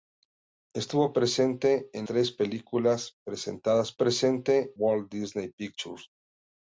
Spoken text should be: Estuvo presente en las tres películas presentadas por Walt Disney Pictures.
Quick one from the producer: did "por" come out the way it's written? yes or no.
no